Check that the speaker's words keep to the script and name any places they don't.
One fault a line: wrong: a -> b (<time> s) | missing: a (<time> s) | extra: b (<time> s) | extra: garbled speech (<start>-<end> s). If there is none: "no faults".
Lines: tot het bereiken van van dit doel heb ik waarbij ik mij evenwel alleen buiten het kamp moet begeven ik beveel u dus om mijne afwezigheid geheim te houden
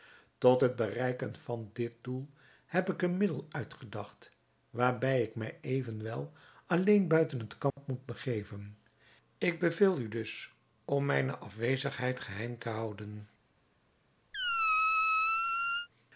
missing: van (1.7 s)
extra: een middel uitgedacht (3.0 s)